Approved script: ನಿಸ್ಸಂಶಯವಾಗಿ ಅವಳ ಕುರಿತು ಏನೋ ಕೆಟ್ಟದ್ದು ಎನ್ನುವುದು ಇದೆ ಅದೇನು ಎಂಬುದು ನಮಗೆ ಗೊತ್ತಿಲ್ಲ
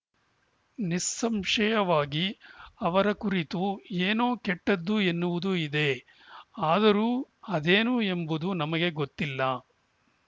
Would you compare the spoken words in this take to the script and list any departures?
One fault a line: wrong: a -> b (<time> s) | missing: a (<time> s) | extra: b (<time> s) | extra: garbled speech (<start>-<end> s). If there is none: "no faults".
wrong: ಅವಳ -> ಅವರ (2.8 s)
extra: ಆದರೂ (6.7 s)